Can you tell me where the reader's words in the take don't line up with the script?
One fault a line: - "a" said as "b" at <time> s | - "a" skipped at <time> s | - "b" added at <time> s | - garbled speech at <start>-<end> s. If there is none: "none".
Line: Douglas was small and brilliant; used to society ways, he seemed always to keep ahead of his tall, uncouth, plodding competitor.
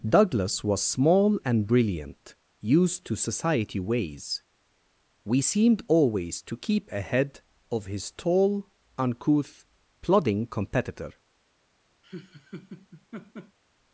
- "he" said as "we" at 5.3 s